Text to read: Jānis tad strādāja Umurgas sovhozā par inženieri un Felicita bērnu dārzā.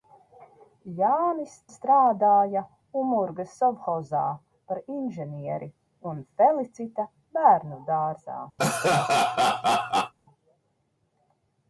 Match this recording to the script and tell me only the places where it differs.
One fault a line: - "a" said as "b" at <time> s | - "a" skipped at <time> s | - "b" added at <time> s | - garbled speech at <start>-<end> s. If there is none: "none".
- "tad" skipped at 1.5 s